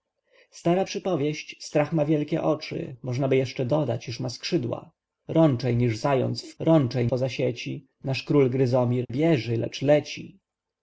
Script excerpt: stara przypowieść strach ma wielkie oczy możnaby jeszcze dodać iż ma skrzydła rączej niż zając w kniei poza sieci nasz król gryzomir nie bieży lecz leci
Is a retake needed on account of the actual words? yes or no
yes